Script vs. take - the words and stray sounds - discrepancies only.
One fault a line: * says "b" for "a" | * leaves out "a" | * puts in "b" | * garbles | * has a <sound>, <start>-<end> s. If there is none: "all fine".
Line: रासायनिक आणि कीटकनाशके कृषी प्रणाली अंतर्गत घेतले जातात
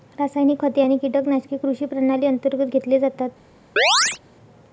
* puts in "खते"
* has a chirp, 3.8-4.2 s